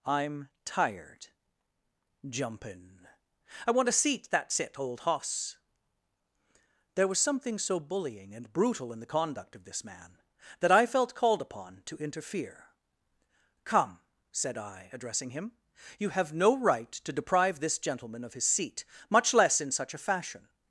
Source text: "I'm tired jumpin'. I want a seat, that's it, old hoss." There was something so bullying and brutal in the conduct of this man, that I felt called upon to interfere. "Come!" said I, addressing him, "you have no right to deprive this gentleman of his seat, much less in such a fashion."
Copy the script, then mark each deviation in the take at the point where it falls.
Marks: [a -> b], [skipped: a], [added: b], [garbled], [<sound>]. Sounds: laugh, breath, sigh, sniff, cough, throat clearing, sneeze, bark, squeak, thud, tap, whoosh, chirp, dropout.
"I'm tired jumpin'. I want a seat, that's it, old hoss." There was something so bullying and brutal in the conduct of this man, that I felt called upon to interfere. "Come!" said I, addressing him, "you have no right to deprive this gentleman of his seat, much less in such a fashion."